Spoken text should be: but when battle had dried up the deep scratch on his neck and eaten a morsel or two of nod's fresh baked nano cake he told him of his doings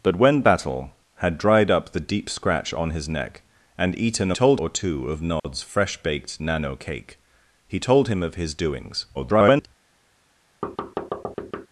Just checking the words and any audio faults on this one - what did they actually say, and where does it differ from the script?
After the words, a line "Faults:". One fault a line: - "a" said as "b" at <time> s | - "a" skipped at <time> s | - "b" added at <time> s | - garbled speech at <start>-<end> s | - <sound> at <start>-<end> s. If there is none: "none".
but when battle had dried up the deep scratch on his neck and eaten a told or two of nod's fresh baked nano cake he told him of his doings [garbled]
Faults:
- "morsel" said as "told" at 4.3 s
- dropout at 5.4-5.4 s
- garbled speech at 9.1-9.7 s
- thud at 10.6-11.7 s